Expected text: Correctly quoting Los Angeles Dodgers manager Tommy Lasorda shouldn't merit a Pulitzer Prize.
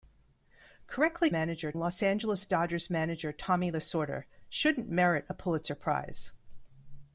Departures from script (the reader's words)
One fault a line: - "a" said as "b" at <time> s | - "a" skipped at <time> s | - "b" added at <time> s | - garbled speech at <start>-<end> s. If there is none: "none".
- "quoting" said as "manager" at 1.3 s